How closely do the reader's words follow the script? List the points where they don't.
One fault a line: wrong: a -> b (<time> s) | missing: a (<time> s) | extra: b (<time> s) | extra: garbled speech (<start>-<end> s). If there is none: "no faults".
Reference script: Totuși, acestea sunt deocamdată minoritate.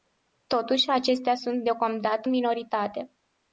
no faults